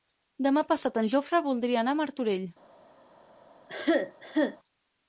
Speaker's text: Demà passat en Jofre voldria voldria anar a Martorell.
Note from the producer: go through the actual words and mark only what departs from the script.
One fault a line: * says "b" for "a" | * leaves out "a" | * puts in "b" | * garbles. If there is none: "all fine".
* leaves out "voldria"